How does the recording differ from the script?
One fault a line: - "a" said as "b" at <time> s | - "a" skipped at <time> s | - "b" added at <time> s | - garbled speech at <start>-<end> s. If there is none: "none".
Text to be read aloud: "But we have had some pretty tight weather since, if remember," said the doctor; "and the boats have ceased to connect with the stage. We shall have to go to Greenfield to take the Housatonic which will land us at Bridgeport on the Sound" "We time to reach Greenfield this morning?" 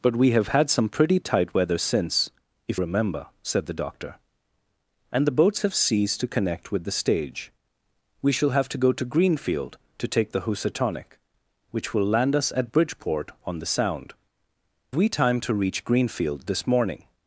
none